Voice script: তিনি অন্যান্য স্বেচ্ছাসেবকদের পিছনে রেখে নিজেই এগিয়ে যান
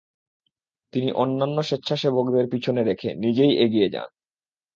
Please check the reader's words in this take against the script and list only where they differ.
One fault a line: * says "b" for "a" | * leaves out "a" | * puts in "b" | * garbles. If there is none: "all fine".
all fine